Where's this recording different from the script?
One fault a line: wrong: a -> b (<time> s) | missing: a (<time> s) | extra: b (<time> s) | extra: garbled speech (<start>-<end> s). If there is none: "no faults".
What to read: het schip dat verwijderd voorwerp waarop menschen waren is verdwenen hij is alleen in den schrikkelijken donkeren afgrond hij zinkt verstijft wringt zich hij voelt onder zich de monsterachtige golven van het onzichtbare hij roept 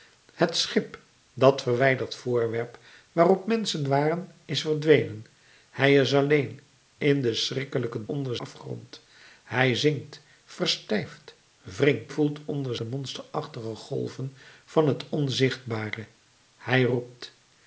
wrong: donkeren -> onder (8.0 s)
missing: zich hij (12.1 s)
missing: zich (12.8 s)